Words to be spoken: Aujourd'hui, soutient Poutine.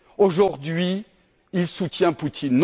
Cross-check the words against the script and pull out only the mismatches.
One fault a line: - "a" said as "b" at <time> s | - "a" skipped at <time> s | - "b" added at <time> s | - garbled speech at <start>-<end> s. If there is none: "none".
- "il" added at 1.5 s